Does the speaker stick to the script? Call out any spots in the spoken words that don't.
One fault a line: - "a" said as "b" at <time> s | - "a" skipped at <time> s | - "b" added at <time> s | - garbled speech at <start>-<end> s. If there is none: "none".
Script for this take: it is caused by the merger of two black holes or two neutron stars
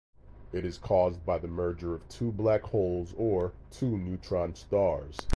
none